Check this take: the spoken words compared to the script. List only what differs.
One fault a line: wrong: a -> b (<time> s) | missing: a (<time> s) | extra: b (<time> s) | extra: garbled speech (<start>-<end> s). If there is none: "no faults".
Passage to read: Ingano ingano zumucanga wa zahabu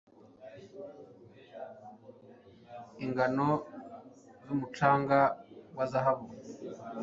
missing: ingano (3.5 s)